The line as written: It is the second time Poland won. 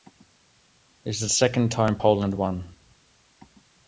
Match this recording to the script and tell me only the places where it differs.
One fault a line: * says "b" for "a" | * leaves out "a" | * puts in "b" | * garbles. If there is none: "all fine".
all fine